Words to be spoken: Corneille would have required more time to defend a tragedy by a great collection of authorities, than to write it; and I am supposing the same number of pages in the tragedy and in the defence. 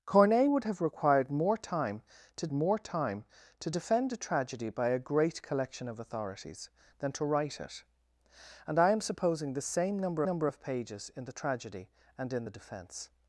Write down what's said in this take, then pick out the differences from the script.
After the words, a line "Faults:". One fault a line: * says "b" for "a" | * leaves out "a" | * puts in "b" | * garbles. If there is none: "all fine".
Corneille would have required more time to more time to defend a tragedy by a great collection of authorities, than to write it; and I am supposing the same number number of pages in the tragedy and in the defence.
Faults:
* puts in "more time to"
* puts in "number"